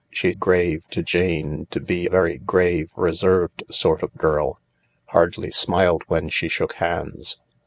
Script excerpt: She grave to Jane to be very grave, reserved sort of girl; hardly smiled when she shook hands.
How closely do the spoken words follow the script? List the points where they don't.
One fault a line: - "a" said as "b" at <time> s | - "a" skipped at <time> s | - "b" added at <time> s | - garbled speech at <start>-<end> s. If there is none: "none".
none